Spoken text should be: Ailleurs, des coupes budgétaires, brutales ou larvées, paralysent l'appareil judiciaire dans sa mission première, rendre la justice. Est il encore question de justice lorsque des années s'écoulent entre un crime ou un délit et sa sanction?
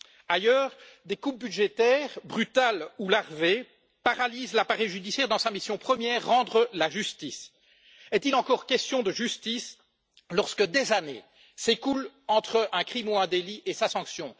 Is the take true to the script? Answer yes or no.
yes